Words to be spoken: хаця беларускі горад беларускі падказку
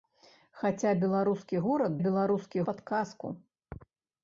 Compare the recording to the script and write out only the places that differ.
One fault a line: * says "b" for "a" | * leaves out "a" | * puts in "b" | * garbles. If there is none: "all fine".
all fine